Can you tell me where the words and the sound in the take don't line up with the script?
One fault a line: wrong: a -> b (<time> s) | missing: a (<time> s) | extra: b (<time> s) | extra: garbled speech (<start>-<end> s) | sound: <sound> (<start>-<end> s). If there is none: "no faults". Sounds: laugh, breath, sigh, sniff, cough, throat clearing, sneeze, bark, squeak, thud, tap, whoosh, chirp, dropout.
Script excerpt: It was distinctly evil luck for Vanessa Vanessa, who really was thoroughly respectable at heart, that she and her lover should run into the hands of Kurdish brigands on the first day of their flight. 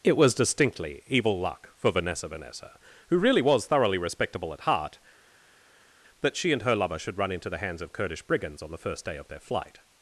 no faults